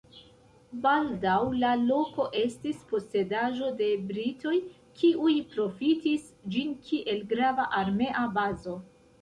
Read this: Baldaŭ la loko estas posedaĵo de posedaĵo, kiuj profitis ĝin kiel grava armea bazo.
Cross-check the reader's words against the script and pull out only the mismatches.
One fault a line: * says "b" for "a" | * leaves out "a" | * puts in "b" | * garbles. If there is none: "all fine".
* says "estis" for "estas"
* says "britoj" for "posedaĵo"